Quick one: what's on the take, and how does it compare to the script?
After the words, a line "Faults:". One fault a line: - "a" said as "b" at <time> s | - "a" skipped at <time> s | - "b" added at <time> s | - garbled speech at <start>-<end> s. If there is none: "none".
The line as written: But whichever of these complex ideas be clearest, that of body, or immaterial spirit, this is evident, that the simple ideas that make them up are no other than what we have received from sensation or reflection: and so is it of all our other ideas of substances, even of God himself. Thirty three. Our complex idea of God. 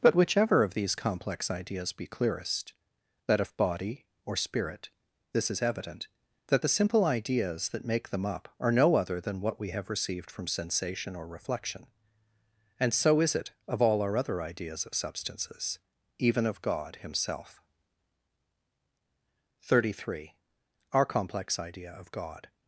But whichever of these complex ideas be clearest, that of body, or spirit, this is evident, that the simple ideas that make them up are no other than what we have received from sensation or reflection: and so is it of all our other ideas of substances, even of God himself. Thirty three. Our complex idea of God.
Faults:
- "immaterial" skipped at 4.3 s